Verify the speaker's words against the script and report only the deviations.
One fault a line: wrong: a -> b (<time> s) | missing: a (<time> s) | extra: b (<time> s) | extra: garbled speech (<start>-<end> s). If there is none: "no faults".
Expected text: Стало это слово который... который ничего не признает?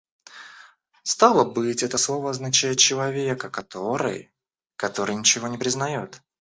extra: быть (1.4 s)
extra: означает человека (2.3 s)